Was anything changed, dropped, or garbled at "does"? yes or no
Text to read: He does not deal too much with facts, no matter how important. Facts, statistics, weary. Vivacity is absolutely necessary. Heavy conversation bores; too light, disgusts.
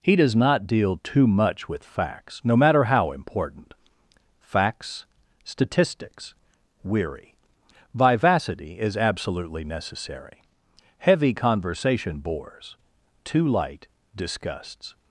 no